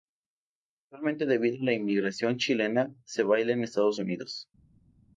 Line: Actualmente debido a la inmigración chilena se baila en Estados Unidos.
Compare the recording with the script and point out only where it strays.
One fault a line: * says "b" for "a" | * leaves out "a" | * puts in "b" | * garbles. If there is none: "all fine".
all fine